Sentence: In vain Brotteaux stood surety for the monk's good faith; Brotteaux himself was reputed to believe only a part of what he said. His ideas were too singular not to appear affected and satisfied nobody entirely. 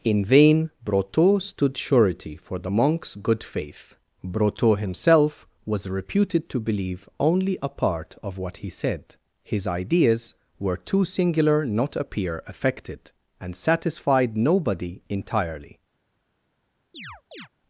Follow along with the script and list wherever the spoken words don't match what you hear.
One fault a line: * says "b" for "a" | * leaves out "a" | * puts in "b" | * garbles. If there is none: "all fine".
* leaves out "to"